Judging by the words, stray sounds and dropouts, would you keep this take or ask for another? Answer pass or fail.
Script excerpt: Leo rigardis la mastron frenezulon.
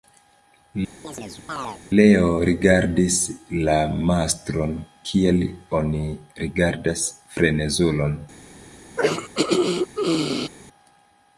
fail